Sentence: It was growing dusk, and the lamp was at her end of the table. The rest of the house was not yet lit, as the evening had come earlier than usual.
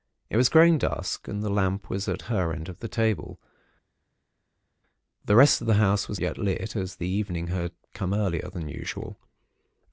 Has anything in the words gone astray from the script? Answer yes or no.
yes